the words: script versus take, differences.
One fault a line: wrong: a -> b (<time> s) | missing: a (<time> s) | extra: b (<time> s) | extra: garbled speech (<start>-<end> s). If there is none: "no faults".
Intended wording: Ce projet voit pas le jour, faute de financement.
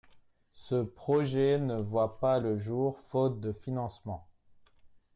extra: ne (1.6 s)